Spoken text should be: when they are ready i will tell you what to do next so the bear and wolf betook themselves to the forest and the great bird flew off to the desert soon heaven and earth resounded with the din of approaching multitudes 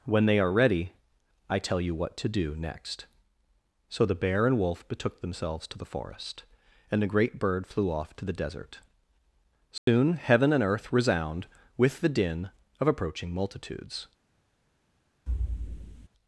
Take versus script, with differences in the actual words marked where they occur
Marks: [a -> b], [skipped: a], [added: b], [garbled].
when they are ready i [skipped: will] tell you what to do next so the bear and wolf betook themselves to the forest and the great bird flew off to the desert soon heaven and earth [resounded -> resound] with the din of approaching multitudes